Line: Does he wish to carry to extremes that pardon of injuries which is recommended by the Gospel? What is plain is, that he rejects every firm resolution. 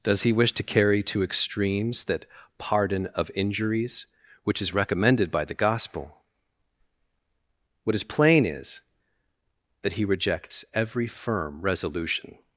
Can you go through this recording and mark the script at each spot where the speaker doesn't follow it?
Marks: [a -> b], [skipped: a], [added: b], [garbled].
Does he wish to carry to extremes that pardon of injuries which is recommended by the Gospel? What is plain is, that he rejects every firm resolution.